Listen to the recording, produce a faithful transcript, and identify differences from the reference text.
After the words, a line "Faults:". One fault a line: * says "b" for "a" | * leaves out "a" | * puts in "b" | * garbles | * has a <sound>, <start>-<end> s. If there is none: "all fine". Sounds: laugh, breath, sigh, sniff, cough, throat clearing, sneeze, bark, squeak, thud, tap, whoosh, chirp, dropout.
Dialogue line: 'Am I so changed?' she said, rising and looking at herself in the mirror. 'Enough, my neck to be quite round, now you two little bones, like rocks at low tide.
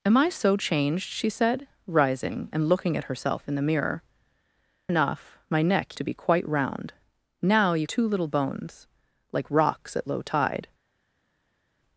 'Am I so changed?' she said, rising and looking at herself in the mirror. 'Enough, my neck to be quite round, now you two little bones, like rocks at low tide.
Faults:
all fine